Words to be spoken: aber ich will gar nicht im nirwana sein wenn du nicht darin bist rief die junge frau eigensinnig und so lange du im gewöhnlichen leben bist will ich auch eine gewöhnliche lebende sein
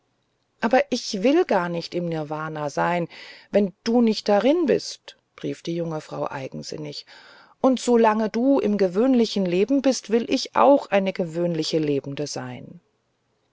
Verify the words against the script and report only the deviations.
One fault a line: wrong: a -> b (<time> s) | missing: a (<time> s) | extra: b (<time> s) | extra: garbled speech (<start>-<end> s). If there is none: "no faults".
no faults